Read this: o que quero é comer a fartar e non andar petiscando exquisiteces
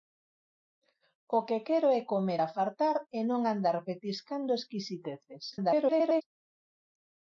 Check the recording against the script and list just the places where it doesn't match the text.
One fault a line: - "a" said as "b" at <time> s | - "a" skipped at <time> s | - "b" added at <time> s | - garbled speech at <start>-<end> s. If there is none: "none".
- garbled speech at 5.5-6.2 s